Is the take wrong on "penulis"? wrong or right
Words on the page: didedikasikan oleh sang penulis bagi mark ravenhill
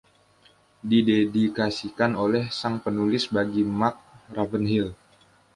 right